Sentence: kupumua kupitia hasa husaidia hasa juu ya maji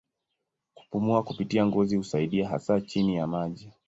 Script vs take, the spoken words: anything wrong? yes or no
yes